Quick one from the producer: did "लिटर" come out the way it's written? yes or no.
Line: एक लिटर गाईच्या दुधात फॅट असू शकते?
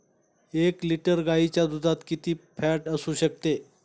yes